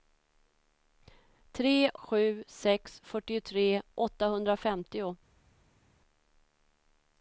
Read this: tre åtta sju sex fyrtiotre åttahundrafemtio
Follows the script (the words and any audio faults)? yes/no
no